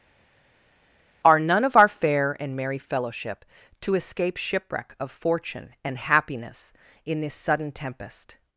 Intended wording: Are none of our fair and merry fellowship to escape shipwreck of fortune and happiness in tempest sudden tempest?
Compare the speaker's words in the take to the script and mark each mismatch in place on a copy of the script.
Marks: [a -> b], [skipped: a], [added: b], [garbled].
Are none of our fair and merry fellowship to escape shipwreck of fortune and happiness in [tempest -> this] sudden tempest?